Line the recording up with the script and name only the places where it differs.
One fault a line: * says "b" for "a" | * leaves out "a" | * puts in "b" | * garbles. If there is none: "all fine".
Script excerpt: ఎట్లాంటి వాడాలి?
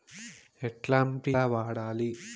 all fine